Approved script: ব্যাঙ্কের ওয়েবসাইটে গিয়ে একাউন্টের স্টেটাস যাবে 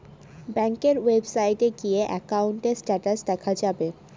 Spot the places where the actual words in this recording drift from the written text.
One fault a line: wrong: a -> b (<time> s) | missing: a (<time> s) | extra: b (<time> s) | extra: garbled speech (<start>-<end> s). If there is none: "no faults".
extra: দেখা (3.3 s)